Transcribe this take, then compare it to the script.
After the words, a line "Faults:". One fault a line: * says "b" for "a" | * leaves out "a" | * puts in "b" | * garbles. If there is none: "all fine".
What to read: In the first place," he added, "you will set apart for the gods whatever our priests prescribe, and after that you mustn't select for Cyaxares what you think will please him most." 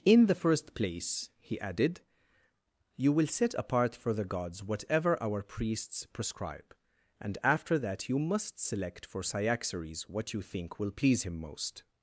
In the first place," he added, "you will set apart for the gods whatever our priests prescribe, and after that you must select for Cyaxares what you think will please him most."
Faults:
* says "must" for "mustn't"